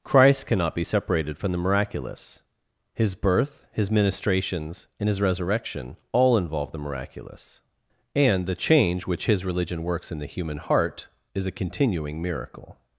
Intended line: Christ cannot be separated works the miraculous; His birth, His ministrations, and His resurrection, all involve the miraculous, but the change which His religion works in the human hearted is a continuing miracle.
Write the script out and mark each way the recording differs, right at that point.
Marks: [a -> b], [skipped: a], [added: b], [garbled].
Christ cannot be separated [works -> from] the miraculous; His birth, His ministrations, and His resurrection, all involve the miraculous, [but -> and] the change which His religion works in the human [hearted -> heart] is a continuing miracle.